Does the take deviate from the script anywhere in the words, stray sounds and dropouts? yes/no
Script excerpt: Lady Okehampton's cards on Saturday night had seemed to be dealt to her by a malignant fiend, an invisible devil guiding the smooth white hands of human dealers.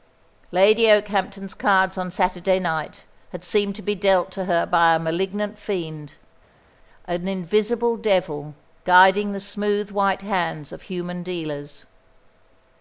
no